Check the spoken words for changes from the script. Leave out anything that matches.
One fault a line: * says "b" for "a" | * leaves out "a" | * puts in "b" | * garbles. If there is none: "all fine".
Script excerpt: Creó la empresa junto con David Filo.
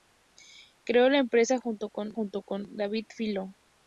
* puts in "junto con"